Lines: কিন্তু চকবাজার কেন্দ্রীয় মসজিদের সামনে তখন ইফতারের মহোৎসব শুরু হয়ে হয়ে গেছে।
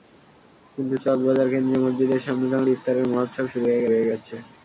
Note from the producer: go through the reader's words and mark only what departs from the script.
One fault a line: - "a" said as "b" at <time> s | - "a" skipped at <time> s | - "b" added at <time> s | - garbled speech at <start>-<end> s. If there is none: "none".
none